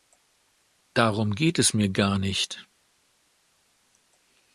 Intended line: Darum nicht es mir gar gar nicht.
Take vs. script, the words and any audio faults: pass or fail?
fail